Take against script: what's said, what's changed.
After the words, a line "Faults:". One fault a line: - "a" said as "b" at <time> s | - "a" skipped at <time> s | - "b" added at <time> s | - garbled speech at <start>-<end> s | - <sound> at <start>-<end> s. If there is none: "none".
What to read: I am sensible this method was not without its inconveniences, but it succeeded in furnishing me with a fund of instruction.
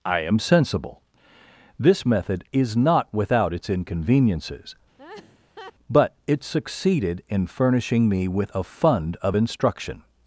I am sensible this method is not without its inconveniences, but it succeeded in furnishing me with a fund of instruction.
Faults:
- "was" said as "is" at 2.5 s
- laugh at 5.0-5.7 s